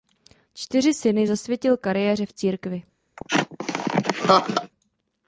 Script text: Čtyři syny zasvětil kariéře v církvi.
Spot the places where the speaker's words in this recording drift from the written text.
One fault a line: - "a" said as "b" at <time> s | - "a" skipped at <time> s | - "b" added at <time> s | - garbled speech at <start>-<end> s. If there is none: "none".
none